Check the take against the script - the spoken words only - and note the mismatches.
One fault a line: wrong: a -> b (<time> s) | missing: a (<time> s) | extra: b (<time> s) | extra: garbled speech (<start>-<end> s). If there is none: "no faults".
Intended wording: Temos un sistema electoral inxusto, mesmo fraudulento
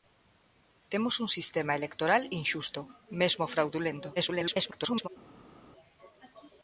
extra: garbled speech (4.2-5.1 s)